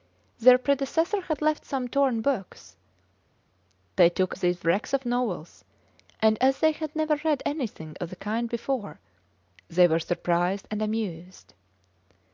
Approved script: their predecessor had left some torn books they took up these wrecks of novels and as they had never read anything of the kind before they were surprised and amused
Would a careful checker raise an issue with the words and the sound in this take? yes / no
yes